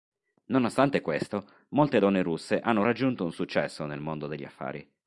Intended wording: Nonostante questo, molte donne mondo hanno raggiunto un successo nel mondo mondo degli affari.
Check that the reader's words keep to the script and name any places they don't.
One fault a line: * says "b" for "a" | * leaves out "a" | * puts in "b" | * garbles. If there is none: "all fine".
* says "russe" for "mondo"
* leaves out "mondo"